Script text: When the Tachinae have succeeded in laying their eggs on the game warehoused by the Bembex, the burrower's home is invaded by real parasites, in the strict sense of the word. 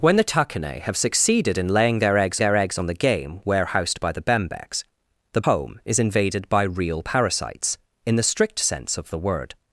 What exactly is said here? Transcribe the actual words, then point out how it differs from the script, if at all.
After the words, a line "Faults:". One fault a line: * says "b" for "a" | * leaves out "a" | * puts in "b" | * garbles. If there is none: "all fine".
When the Tachinae have succeeded in laying their eggs their eggs on the game warehoused by the Bembex, the home is invaded by real parasites, in the strict sense of the word.
Faults:
* puts in "their eggs"
* leaves out "burrower's"